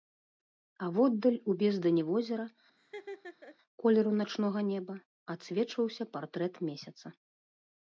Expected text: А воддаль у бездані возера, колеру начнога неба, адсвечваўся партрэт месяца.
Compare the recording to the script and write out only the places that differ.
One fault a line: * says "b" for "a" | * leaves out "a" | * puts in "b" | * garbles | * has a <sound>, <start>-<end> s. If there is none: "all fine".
* has a laugh, 2.8-3.6 s